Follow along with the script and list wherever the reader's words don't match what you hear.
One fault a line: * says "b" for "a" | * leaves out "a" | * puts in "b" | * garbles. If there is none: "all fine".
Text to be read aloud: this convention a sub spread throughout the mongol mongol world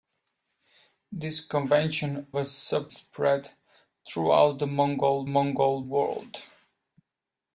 all fine